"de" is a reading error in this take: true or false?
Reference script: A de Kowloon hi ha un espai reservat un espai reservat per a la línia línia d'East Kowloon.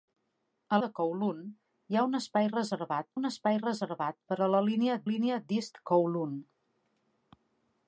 false